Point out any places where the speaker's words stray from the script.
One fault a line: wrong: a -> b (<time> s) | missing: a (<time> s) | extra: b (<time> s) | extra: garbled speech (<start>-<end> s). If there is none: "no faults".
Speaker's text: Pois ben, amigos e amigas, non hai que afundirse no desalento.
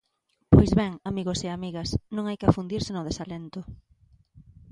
no faults